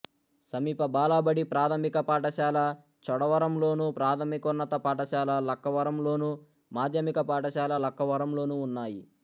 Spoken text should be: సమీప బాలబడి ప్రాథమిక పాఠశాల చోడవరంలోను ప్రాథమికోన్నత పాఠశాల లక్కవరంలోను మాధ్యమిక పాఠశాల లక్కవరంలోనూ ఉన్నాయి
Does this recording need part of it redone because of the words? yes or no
no